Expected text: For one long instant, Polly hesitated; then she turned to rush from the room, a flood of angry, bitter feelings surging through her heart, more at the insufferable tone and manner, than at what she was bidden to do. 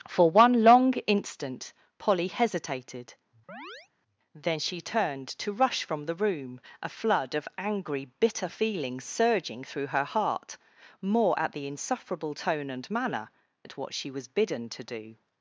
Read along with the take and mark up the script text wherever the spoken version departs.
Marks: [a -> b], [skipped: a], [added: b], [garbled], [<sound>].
For one long instant, Polly hesitated; [chirp] then she turned to rush from the room, a flood of angry, bitter feelings surging through her heart, more at the insufferable tone and manner, [skipped: than] at what she was bidden to do.